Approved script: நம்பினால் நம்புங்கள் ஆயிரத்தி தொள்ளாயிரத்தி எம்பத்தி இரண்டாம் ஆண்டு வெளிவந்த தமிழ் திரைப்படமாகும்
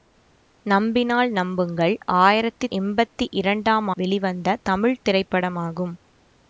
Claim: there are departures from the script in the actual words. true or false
true